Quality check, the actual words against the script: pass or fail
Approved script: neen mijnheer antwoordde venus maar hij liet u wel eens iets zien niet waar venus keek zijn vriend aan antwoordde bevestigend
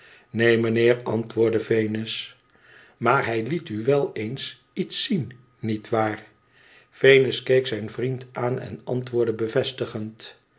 fail